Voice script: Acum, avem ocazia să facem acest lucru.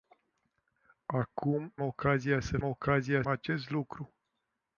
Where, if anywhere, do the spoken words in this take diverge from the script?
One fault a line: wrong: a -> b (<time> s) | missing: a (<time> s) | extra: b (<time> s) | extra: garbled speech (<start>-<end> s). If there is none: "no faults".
missing: avem (1.8 s)
wrong: facem -> ocazia (2.6 s)